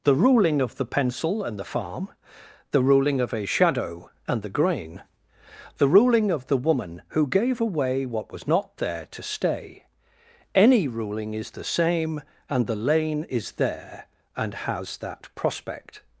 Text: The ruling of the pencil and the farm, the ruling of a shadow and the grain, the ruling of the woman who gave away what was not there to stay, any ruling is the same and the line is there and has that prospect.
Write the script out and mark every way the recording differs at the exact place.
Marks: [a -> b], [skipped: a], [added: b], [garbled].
The ruling of the pencil and the farm, the ruling of a shadow and the grain, the ruling of the woman who gave away what was not there to stay, any ruling is the same and the [line -> lane] is there and has that prospect.